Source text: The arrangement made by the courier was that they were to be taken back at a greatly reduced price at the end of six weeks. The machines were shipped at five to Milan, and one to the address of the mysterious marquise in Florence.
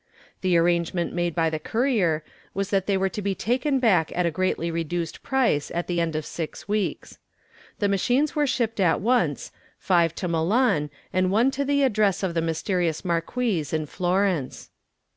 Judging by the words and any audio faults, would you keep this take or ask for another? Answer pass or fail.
fail